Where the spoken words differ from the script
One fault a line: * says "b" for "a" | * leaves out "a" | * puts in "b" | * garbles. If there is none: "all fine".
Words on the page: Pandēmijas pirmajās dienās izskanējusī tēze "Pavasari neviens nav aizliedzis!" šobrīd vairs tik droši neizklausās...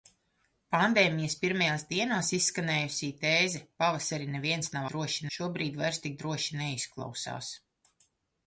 * says "droši" for "aizliedzis"